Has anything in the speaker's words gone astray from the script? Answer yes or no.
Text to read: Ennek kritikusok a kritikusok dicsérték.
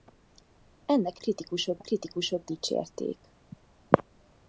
no